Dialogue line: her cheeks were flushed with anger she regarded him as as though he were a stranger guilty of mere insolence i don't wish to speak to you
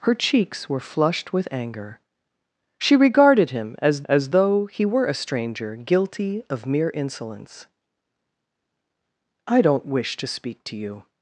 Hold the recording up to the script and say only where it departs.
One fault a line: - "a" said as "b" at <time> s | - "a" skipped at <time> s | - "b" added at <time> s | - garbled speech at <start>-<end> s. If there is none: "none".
none